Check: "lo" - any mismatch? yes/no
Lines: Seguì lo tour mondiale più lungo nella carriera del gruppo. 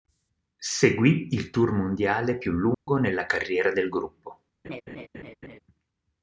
yes